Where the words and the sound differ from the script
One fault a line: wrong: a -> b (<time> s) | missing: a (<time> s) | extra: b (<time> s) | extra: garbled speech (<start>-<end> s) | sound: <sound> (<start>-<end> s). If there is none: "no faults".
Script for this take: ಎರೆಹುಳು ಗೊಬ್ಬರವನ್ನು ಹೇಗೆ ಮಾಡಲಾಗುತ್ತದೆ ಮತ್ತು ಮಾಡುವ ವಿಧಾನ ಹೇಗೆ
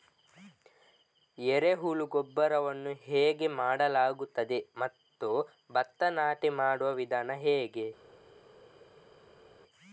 extra: ಭತ್ತ ನಾಟಿ (5.7 s)